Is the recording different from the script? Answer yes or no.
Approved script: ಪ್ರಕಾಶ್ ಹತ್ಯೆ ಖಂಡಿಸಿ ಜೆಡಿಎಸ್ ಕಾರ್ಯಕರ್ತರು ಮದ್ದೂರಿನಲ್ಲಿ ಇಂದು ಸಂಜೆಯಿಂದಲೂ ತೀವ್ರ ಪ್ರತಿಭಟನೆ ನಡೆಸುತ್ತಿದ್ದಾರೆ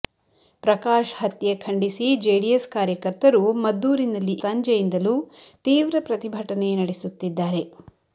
yes